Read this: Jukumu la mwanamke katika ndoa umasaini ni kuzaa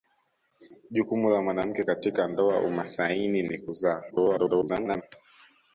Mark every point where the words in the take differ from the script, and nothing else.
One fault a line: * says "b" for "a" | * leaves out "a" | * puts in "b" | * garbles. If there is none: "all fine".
* garbles